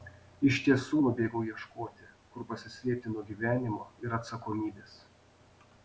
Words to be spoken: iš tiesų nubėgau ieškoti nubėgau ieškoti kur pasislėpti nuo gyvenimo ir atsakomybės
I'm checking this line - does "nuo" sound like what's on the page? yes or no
yes